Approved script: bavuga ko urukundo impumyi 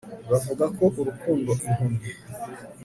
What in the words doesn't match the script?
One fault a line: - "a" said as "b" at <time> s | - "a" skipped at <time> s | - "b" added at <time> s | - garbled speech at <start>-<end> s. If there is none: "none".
none